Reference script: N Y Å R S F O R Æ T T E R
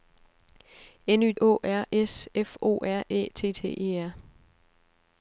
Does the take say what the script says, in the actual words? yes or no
yes